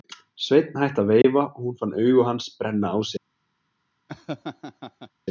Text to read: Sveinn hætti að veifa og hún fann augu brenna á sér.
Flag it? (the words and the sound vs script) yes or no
yes